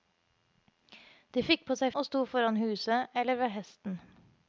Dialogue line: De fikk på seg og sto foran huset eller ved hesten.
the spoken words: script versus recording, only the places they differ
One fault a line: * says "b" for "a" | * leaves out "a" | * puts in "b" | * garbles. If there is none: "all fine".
all fine